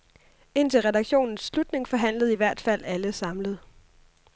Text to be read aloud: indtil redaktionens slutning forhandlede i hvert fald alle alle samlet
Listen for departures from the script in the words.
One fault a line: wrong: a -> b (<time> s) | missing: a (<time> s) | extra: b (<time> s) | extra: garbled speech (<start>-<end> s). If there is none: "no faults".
missing: alle (3.1 s)